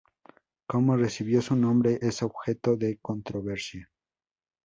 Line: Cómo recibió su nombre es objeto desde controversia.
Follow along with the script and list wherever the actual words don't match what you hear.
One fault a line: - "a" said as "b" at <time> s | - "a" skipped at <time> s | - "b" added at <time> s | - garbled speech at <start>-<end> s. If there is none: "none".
- "desde" said as "de" at 2.8 s